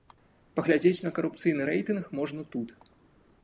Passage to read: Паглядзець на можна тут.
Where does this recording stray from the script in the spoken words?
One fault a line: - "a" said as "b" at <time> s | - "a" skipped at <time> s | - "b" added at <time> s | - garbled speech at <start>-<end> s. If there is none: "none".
- "карупцыйны рэйтынг" added at 1.2 s